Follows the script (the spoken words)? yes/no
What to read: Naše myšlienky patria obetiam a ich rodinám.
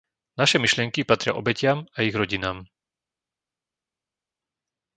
yes